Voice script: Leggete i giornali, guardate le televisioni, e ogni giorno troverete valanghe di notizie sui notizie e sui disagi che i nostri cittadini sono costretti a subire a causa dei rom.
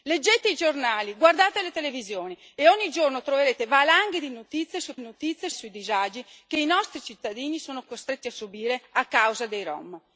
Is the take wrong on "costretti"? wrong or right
right